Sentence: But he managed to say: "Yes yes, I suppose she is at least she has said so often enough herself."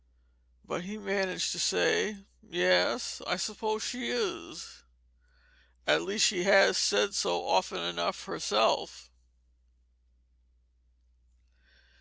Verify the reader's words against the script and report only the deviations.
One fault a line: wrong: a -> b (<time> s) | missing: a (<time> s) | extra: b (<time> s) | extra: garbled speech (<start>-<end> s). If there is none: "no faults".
missing: yes (3.2 s)